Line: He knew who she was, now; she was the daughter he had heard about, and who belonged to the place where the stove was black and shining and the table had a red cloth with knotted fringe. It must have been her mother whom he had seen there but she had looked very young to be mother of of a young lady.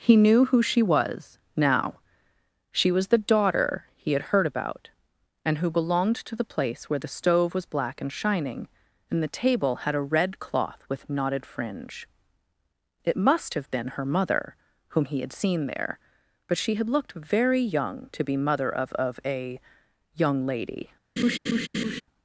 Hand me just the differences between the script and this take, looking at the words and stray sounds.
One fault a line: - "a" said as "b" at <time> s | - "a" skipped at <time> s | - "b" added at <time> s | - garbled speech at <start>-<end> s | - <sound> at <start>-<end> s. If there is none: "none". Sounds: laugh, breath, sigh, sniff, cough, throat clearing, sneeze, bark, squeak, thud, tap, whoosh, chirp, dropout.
- laugh at 21.2-22.0 s